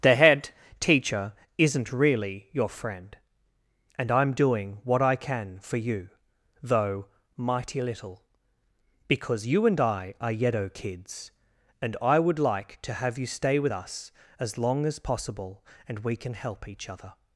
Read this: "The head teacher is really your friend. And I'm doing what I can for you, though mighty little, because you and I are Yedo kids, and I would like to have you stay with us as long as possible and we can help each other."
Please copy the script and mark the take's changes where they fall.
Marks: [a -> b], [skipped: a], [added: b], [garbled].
"The head teacher [is -> isn't] really your friend. And I'm doing what I can for you, though mighty little, because you and I are Yedo kids, and I would like to have you stay with us as long as possible and we can help each other."